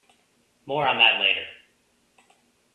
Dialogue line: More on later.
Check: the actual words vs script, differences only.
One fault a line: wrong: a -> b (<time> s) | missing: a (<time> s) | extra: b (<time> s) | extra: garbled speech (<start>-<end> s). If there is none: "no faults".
extra: that (1.0 s)